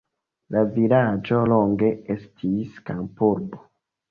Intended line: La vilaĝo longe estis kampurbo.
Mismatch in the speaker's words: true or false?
false